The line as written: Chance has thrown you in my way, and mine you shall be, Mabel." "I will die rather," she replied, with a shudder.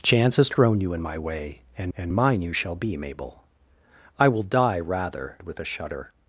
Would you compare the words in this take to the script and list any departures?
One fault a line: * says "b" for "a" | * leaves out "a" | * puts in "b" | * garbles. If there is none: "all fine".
* puts in "and"
* leaves out "she replied"